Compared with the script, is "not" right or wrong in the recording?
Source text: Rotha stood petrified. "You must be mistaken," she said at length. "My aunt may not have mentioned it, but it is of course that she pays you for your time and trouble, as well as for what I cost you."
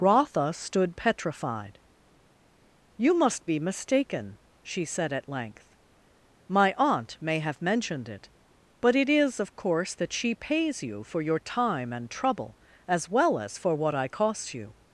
wrong